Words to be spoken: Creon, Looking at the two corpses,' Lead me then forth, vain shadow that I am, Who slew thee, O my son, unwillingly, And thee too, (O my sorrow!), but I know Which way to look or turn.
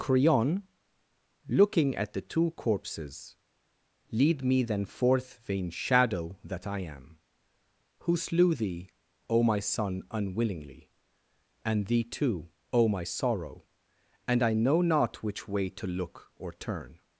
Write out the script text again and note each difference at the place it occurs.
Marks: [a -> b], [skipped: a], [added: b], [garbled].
Creon, Looking at the two corpses,' Lead me then forth, vain shadow that I am, Who slew thee, O my son, unwillingly, And thee too, (O my sorrow!), [but -> and] I know [added: not] Which way to look or turn.